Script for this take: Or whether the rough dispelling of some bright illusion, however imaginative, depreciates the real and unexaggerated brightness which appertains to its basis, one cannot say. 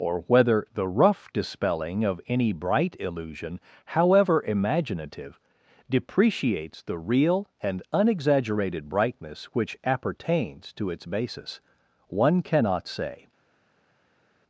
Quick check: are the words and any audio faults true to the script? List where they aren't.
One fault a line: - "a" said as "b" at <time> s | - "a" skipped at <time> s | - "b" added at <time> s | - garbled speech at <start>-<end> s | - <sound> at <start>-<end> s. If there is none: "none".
- "some" said as "any" at 2.3 s